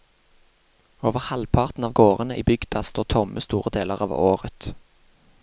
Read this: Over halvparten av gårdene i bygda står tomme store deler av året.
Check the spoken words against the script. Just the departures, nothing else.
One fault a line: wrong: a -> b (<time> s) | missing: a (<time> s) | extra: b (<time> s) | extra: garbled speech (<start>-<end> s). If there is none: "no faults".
no faults